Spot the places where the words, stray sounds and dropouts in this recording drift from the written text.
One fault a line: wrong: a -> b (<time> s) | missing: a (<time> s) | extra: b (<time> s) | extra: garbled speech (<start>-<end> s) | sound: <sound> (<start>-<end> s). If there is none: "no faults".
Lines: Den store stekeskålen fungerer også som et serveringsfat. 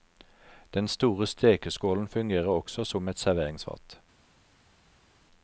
no faults